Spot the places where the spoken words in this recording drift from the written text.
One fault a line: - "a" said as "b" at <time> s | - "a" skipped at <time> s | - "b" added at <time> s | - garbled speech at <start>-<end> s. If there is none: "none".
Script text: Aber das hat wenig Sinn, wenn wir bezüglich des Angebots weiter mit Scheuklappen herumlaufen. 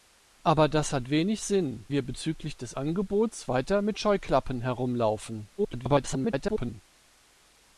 - "wenn" skipped at 1.9 s
- garbled speech at 5.6-6.8 s